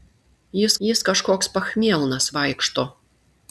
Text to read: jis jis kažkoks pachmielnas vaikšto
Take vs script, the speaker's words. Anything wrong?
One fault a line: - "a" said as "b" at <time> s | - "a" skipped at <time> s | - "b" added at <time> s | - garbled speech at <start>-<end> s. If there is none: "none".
none